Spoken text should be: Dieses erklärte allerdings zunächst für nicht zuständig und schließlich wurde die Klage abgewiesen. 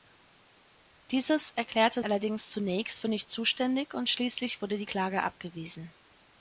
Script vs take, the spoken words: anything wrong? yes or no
no